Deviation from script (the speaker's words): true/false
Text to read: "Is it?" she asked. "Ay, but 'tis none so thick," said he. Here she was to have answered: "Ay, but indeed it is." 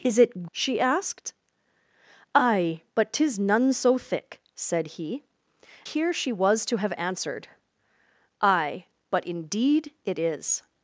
false